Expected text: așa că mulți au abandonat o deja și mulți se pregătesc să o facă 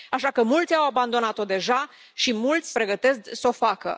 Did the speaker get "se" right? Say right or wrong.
wrong